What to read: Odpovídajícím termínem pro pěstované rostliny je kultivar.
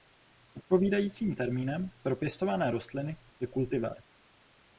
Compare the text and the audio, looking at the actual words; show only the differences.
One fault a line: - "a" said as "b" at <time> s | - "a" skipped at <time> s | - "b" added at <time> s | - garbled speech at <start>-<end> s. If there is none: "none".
none